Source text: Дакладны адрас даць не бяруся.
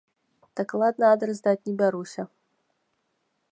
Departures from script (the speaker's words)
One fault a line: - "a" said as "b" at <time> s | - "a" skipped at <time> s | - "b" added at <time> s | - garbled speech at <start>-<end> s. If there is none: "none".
none